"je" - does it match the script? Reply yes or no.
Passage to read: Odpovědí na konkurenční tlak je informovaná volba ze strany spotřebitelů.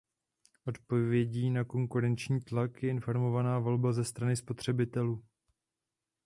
yes